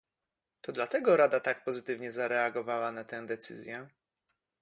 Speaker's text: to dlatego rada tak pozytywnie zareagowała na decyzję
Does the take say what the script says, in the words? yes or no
no